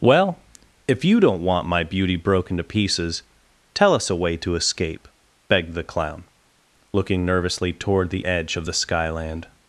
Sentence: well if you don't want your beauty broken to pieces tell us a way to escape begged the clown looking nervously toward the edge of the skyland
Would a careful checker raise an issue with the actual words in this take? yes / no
yes